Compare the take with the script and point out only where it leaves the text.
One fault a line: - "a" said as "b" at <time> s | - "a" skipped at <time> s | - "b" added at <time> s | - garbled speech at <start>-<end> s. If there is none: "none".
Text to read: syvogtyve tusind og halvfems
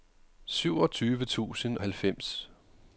- "og" skipped at 1.8 s